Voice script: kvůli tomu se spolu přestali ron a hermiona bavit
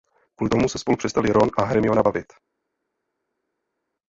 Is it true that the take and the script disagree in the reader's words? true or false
false